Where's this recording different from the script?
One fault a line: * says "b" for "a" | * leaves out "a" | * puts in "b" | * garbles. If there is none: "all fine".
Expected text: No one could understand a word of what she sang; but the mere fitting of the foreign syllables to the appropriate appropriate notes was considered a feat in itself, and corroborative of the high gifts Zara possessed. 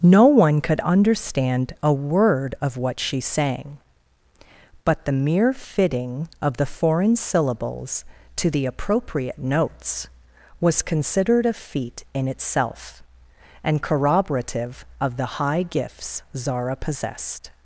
* leaves out "appropriate"